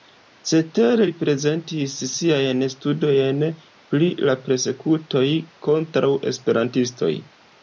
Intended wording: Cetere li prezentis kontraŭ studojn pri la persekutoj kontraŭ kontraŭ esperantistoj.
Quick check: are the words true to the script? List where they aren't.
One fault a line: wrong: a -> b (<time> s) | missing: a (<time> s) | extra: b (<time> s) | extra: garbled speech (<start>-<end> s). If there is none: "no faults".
wrong: kontraŭ -> siajn (2.1 s)
missing: kontraŭ (6.1 s)